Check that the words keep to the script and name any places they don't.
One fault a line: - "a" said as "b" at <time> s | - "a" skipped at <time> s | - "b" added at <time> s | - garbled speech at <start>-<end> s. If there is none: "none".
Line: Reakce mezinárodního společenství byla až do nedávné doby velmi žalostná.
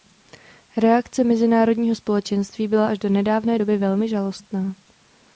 none